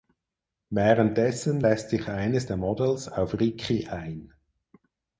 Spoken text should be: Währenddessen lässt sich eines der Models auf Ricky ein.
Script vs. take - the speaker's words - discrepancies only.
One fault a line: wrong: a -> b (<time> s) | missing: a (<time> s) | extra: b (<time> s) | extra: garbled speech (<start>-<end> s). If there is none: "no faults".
no faults